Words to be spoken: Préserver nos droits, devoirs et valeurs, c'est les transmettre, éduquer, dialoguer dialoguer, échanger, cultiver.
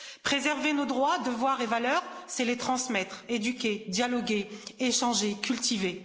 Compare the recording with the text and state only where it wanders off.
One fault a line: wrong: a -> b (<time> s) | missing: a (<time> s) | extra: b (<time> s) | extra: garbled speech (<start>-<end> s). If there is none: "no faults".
missing: dialoguer (4.5 s)